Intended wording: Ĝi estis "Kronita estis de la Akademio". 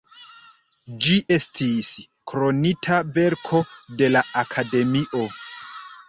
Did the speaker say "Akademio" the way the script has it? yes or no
yes